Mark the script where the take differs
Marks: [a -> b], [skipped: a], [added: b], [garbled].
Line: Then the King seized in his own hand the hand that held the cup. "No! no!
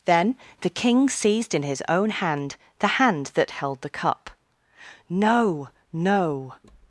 Then the King seized in his own hand the hand that held the cup. "No! no!